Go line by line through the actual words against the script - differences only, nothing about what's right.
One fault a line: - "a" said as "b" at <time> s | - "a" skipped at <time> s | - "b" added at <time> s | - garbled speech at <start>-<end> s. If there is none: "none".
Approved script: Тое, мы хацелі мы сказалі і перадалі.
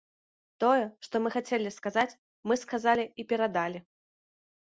- "што" added at 1.1 s
- "сказаць" added at 1.8 s